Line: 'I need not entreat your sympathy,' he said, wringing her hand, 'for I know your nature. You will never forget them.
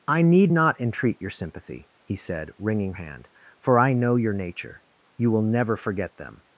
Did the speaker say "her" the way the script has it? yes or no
no